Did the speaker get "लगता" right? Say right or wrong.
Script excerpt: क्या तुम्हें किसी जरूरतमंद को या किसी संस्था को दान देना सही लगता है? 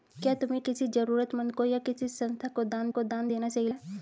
wrong